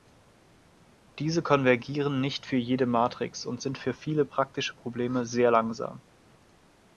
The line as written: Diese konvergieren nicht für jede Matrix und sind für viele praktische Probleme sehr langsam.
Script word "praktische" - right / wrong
right